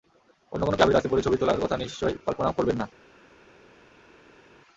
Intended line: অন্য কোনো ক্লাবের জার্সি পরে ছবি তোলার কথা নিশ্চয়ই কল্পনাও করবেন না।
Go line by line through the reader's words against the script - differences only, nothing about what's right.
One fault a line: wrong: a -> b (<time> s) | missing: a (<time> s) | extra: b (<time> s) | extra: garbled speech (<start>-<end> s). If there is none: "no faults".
no faults